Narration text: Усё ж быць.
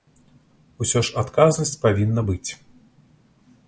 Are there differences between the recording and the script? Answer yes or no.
yes